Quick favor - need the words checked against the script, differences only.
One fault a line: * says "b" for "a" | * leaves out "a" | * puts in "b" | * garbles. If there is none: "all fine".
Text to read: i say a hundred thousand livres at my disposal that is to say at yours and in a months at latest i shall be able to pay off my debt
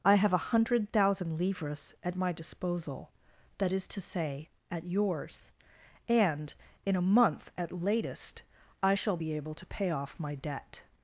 * says "have" for "say"
* says "month" for "months"